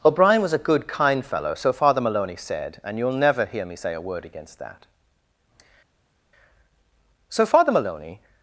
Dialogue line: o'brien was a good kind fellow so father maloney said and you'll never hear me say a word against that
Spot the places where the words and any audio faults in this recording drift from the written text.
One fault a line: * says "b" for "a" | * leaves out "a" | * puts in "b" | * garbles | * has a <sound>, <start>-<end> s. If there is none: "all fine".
* puts in "so father maloney"